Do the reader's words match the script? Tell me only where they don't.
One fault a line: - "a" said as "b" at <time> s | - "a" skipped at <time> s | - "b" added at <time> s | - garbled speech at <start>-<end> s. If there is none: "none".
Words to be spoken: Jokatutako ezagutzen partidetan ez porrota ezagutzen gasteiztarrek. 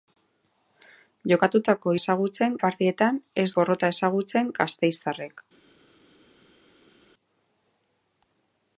none